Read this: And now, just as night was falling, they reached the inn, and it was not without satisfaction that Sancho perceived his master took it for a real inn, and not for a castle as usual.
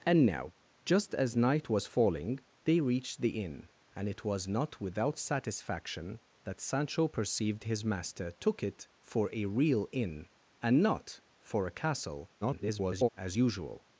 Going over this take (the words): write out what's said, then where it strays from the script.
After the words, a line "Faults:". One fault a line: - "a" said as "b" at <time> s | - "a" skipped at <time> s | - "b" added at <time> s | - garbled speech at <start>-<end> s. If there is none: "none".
And now, just as night was falling, they reached the inn, and it was not without satisfaction that Sancho perceived his master took it for a real inn, and not for a castle [garbled] as usual.
Faults:
- garbled speech at 12.4-13.1 s